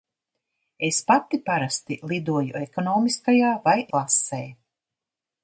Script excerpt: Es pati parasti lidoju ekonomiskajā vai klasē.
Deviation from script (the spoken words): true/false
false